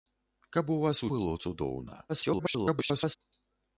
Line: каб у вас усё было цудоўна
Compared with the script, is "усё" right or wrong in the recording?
wrong